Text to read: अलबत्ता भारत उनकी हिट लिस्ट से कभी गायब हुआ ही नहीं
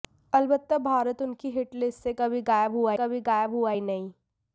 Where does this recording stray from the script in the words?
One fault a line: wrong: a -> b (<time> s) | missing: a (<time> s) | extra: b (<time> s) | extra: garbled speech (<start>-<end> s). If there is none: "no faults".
extra: कभी गायब हुआ (2.9 s)